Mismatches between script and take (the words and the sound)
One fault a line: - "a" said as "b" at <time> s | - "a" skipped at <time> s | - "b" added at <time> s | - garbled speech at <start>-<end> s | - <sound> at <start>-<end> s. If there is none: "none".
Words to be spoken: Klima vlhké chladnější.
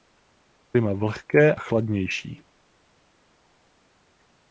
none